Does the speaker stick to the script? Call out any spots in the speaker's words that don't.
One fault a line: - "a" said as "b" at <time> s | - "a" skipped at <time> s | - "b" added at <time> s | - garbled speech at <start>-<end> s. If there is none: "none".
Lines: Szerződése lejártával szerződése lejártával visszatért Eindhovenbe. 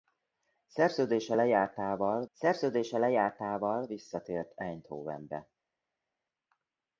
none